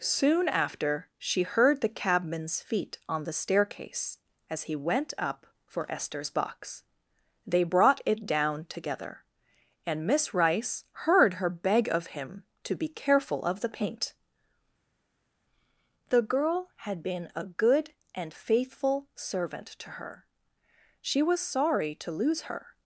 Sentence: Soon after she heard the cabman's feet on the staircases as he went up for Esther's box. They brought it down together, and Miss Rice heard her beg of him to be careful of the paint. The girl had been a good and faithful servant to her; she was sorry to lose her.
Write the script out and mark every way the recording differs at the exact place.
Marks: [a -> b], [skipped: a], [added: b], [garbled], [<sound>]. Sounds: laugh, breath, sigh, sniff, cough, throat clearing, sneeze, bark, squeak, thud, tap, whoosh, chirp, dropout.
Soon after she heard the cabman's feet on the [staircases -> staircase] as he went up for Esther's box. They brought it down together, and Miss Rice heard her beg of him to be careful of the paint. The girl had been a good and faithful servant to her; she was sorry to lose her.